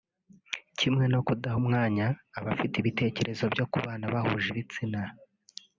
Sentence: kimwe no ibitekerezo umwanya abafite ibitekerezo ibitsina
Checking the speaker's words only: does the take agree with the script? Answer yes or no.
no